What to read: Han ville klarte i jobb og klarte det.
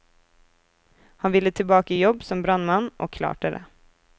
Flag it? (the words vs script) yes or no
yes